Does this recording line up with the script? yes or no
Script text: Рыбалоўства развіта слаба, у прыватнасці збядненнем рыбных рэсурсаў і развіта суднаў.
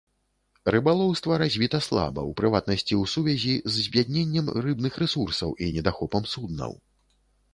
no